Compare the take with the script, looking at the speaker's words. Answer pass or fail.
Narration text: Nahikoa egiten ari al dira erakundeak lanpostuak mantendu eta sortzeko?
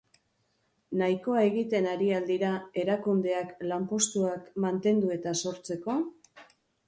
pass